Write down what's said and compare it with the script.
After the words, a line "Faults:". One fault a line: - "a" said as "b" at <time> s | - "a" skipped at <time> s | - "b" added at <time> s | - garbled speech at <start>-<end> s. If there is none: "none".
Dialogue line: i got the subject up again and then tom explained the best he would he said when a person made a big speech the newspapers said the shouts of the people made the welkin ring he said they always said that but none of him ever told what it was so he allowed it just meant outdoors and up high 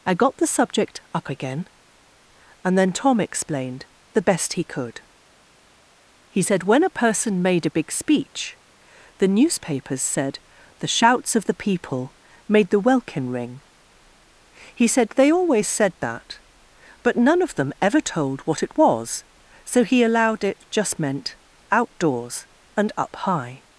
i got the subject up again and then tom explained the best he could he said when a person made a big speech the newspapers said the shouts of the people made the welkin ring he said they always said that but none of them ever told what it was so he allowed it just meant outdoors and up high
Faults:
- "would" said as "could" at 4.6 s
- "him" said as "them" at 17.6 s